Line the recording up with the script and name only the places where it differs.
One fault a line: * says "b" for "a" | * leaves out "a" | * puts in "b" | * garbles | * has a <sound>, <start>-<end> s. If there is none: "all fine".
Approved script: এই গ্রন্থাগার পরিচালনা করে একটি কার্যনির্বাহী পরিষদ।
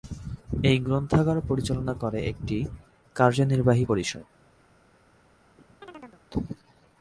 * has a chirp, 5.6-6.2 s